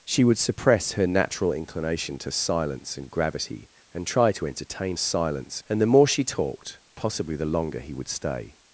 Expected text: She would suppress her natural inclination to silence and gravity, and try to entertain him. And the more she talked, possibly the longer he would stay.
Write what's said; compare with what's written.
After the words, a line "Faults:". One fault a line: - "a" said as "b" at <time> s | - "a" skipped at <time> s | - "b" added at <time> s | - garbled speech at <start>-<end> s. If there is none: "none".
She would suppress her natural inclination to silence and gravity, and try to entertain silence. And the more she talked, possibly the longer he would stay.
Faults:
- "him" said as "silence" at 5.0 s